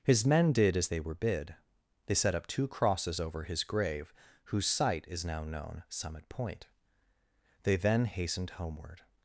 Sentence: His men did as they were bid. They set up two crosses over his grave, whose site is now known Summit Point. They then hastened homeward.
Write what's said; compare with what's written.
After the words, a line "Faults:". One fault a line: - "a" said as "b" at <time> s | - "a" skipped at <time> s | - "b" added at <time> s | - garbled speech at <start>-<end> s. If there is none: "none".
His men did as they were bid. They set up two crosses over his grave, whose site is now known Summit Point. They then hastened homeward.
Faults:
none